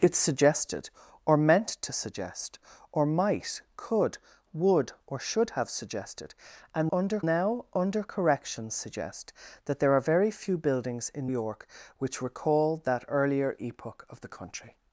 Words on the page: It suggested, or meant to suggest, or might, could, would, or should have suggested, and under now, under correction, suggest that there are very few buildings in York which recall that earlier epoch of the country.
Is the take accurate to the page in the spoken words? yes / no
yes